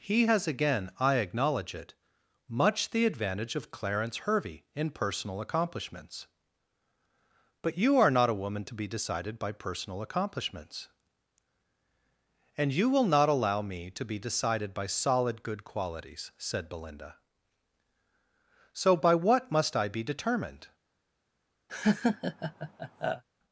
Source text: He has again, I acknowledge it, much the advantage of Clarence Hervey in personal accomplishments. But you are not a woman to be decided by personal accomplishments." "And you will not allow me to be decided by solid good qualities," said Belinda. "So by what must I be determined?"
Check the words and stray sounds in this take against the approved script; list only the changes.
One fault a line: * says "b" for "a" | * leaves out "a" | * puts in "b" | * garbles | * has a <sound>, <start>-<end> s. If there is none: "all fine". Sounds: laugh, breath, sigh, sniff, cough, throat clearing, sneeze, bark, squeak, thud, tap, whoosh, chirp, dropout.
* has a laugh, 21.7-23.2 s